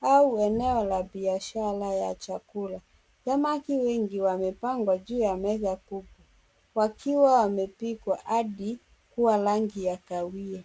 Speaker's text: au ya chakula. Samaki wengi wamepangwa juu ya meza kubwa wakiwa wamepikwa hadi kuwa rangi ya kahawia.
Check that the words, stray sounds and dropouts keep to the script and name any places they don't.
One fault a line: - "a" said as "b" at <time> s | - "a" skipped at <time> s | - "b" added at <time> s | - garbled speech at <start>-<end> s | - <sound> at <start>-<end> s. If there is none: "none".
- "eneo la biashara" added at 0.4 s